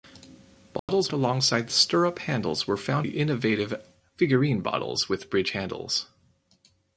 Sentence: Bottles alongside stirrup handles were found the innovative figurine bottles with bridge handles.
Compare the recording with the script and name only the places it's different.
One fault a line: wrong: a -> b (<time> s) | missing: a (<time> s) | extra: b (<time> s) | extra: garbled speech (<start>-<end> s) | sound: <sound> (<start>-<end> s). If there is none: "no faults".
sound: dropout (0.8-0.9 s)